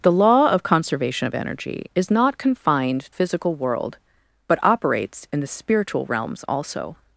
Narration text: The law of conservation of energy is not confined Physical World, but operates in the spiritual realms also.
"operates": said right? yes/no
yes